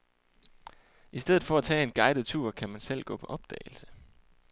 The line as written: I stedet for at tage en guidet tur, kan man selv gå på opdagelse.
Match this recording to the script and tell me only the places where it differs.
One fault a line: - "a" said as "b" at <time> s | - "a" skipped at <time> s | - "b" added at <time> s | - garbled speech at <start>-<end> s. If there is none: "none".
none